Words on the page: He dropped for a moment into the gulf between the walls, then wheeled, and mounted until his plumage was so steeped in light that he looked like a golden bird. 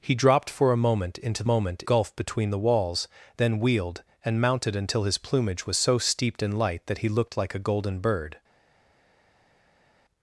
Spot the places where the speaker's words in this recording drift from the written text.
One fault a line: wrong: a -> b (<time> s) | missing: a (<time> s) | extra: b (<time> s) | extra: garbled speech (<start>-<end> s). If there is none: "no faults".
wrong: the -> moment (1.5 s)